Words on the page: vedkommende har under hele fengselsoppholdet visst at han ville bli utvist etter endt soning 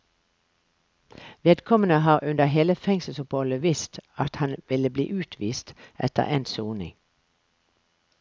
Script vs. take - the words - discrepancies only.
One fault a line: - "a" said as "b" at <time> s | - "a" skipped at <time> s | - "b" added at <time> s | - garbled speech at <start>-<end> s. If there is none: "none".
none